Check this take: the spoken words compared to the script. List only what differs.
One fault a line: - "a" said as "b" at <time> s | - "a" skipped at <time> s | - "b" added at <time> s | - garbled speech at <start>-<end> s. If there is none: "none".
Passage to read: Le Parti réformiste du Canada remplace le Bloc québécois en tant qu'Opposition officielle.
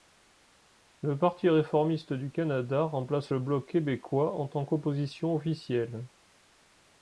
none